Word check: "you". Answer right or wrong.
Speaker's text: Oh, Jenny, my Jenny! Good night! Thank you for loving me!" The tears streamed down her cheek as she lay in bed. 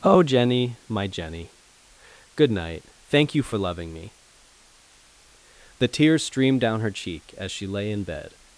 right